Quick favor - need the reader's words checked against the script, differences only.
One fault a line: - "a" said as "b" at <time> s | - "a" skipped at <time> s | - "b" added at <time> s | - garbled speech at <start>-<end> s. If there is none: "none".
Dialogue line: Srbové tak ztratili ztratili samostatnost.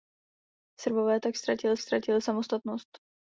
none